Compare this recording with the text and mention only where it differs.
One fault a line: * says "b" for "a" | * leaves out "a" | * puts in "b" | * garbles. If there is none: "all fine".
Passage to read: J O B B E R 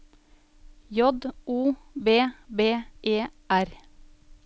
all fine